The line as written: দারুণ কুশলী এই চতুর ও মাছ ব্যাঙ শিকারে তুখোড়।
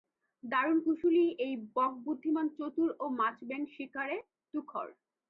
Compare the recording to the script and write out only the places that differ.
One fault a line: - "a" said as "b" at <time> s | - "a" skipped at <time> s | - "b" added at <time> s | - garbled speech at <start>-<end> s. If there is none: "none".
- "বক বুদ্ধিমান" added at 1.7 s